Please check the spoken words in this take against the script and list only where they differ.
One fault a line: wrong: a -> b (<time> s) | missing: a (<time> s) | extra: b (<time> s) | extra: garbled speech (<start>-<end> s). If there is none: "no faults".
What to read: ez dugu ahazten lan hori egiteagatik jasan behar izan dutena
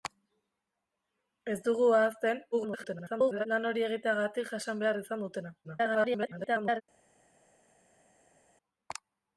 extra: garbled speech (2.5-3.5 s)
extra: garbled speech (5.6-6.8 s)